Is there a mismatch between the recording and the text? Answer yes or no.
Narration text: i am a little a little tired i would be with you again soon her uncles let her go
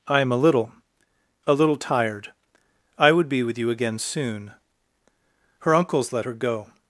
no